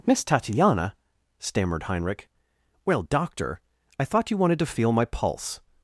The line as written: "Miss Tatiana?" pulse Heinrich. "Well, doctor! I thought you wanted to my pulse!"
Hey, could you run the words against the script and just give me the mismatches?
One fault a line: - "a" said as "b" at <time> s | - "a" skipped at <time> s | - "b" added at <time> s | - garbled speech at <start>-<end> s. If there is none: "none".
- "pulse" said as "stammered" at 1.4 s
- "feel" added at 4.7 s